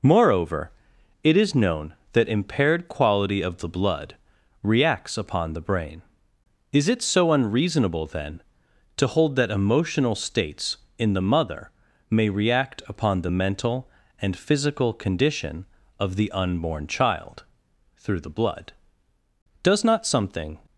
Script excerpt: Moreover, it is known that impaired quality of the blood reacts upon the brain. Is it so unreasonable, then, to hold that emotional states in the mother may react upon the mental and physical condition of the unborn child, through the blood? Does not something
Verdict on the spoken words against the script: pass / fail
pass